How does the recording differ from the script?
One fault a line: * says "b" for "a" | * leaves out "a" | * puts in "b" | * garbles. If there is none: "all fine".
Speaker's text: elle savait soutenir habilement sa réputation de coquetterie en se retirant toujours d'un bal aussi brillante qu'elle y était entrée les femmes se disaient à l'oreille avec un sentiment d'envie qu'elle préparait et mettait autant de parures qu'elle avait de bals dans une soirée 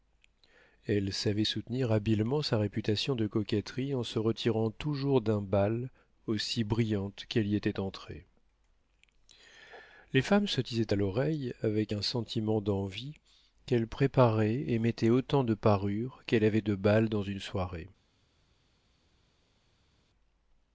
all fine